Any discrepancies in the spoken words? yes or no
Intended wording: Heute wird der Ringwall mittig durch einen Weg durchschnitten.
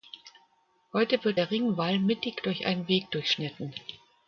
no